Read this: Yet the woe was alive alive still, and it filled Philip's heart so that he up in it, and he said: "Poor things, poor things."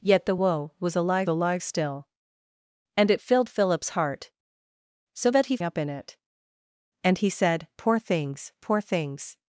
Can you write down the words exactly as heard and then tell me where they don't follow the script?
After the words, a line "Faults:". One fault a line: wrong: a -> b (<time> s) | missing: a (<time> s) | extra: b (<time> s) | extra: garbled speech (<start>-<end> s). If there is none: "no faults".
Yet the woe was alive alive still, and it filled Philip's heart so that he up in it, and he said: "Poor things, poor things."
Faults:
no faults